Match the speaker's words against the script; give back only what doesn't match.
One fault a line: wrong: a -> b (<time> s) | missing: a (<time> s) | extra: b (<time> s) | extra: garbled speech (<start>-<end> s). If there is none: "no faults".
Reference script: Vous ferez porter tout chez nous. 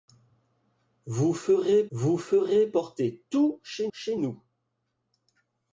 extra: vous ferez (1.9 s)
extra: chez (3.9 s)